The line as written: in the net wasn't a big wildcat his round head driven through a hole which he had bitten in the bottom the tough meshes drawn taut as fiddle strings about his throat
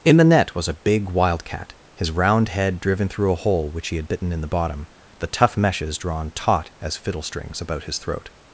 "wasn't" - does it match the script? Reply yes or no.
no